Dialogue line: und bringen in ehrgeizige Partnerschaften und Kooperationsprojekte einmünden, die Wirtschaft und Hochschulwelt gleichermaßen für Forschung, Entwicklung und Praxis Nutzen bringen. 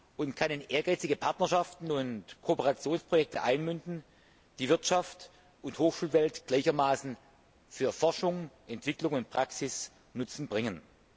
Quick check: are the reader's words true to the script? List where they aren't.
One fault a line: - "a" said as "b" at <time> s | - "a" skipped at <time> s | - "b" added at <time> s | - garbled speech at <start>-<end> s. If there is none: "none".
- "bringen" said as "kann" at 0.3 s